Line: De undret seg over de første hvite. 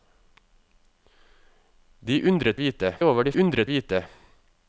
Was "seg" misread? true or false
true